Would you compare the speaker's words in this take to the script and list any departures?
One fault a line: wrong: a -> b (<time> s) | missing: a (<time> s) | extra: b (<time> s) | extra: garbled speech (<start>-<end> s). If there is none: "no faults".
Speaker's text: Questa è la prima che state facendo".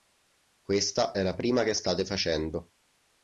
no faults